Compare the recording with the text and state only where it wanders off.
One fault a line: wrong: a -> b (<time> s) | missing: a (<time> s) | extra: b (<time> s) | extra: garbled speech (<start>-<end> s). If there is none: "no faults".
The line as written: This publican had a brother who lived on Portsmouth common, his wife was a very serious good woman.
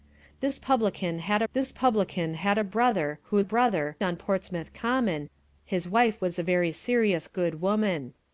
extra: this publican had (1.5 s)
wrong: lived -> brother (3.4 s)